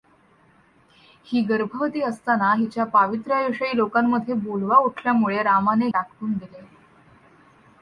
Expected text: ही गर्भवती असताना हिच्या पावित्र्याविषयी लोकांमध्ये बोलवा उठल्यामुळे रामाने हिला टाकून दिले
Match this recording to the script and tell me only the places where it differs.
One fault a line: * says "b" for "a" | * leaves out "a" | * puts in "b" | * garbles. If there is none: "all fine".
* leaves out "हिला"